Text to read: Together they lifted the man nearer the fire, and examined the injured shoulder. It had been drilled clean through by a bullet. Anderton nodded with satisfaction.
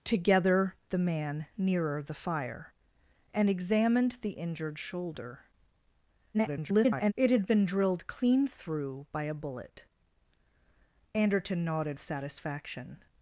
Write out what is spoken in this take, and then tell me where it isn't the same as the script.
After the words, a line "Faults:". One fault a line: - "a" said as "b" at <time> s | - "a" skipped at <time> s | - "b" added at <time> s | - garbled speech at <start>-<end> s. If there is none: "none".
Together the man nearer the fire, and examined the injured shoulder. [garbled] It had been drilled clean through by a bullet. Anderton nodded satisfaction.
Faults:
- "they lifted" skipped at 0.8 s
- garbled speech at 6.3-7.1 s
- "with" skipped at 12.0 s